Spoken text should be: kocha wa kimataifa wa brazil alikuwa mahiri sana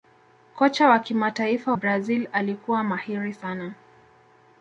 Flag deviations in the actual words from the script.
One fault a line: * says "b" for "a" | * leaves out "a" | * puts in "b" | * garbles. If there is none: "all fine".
* leaves out "wa"